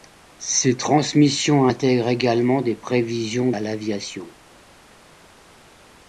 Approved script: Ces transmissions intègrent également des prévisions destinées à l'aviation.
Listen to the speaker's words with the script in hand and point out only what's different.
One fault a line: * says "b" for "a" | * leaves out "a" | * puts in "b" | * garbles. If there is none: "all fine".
* leaves out "destinées"